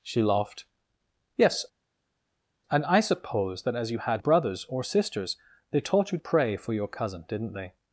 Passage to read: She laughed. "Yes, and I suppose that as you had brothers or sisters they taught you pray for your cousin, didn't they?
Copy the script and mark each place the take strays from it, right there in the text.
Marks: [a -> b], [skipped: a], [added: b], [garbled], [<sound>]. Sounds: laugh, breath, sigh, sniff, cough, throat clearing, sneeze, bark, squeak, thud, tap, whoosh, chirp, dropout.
She laughed. "Yes, and I suppose that as you had brothers or sisters they taught you pray for your cousin, didn't they?